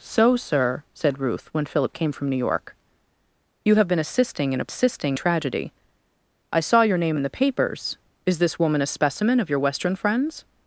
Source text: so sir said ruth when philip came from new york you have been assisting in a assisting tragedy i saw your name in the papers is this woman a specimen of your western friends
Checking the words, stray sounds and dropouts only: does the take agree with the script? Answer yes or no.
yes